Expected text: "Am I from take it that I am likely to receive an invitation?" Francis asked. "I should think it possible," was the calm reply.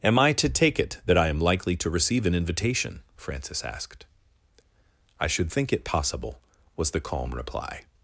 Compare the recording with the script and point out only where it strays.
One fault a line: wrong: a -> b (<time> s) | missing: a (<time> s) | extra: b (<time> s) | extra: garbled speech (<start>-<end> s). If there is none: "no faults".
wrong: from -> to (0.3 s)